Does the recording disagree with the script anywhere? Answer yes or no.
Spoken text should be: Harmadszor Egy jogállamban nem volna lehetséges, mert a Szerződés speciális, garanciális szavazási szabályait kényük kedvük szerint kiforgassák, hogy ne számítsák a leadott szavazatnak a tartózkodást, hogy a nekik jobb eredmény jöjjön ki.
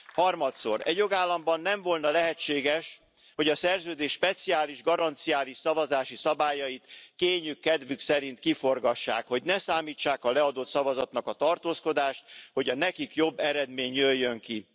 yes